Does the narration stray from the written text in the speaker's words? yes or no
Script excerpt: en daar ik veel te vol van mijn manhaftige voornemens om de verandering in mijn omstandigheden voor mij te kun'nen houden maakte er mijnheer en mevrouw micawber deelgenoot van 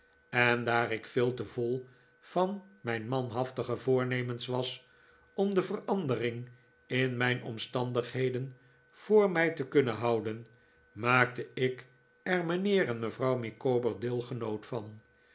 yes